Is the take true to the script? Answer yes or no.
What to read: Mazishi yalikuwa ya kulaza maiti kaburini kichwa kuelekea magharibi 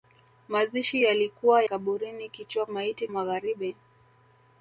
no